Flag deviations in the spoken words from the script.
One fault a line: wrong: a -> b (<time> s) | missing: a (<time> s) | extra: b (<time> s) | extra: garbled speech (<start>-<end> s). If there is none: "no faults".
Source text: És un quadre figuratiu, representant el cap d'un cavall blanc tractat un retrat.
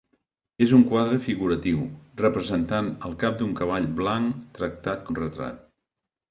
no faults